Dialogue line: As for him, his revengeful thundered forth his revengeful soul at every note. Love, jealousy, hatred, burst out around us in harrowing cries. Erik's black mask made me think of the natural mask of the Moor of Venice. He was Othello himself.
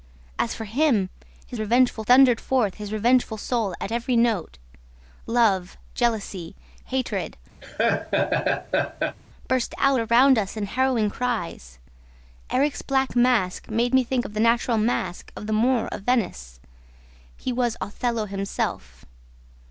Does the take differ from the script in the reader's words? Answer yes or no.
no